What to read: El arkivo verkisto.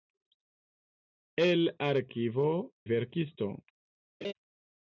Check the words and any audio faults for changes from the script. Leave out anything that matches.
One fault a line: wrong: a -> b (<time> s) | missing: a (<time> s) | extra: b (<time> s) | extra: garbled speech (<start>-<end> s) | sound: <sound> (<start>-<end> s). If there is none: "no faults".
sound: laugh (4.2-4.3 s)